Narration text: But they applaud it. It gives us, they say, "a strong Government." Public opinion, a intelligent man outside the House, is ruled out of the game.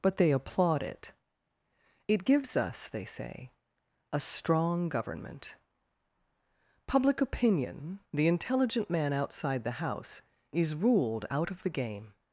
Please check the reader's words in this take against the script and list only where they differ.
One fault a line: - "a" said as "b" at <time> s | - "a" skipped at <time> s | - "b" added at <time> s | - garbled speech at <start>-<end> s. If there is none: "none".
- "a" said as "the" at 8.1 s